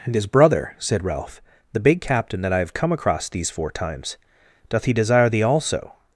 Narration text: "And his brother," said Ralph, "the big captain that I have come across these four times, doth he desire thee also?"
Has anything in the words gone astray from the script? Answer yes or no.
no